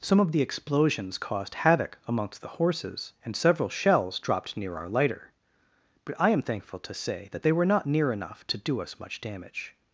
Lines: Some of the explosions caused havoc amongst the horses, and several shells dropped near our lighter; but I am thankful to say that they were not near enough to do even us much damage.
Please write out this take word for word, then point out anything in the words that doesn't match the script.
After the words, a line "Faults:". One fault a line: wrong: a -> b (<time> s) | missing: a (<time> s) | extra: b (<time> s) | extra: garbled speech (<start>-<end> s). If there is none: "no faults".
Some of the explosions caused havoc amongst the horses, and several shells dropped near our lighter; but I am thankful to say that they were not near enough to do us much damage.
Faults:
missing: even (8.8 s)